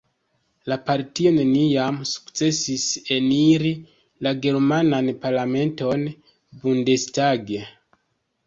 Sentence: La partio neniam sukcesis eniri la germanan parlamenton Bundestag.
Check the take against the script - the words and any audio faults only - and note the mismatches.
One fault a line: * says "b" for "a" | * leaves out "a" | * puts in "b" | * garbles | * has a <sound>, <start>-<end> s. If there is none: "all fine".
all fine